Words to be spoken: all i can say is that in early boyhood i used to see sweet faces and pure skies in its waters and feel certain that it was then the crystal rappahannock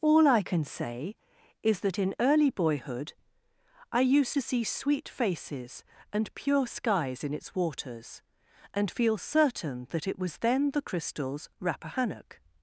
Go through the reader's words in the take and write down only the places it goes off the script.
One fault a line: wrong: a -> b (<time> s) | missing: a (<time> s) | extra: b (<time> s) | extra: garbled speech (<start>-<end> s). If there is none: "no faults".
wrong: crystal -> crystals (10.8 s)